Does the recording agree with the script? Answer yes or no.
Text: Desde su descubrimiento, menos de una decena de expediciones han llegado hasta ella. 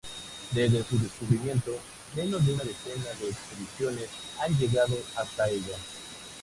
yes